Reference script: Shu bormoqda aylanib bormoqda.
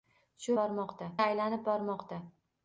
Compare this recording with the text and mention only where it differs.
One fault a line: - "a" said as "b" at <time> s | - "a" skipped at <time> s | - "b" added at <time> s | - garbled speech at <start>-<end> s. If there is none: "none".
none